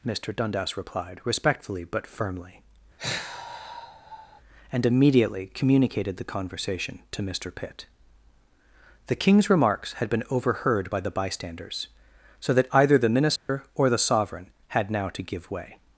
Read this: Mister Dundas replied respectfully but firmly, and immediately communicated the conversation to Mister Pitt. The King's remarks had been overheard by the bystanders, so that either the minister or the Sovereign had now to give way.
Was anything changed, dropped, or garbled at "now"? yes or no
no